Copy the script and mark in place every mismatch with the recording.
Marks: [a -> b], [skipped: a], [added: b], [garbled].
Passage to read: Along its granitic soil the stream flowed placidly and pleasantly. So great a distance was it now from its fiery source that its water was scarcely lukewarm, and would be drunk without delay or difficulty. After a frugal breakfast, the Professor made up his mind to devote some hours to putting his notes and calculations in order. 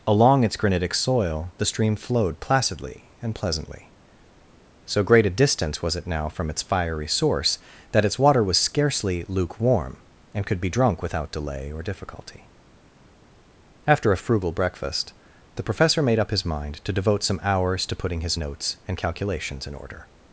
Along its granitic soil the stream flowed placidly and pleasantly. So great a distance was it now from its fiery source that its water was scarcely lukewarm, and [would -> could] be drunk without delay or difficulty. After a frugal breakfast, the Professor made up his mind to devote some hours to putting his notes and calculations in order.